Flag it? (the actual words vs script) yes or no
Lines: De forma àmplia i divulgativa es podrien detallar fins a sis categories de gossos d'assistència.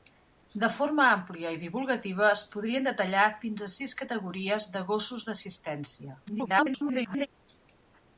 yes